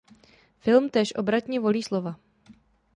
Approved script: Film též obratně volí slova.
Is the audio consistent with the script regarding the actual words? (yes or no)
yes